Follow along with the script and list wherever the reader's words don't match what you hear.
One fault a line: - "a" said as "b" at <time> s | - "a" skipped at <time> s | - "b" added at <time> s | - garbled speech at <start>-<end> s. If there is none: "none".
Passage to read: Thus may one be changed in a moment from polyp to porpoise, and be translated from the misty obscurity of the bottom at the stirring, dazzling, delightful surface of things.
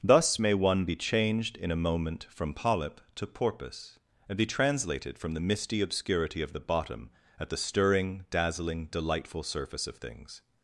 none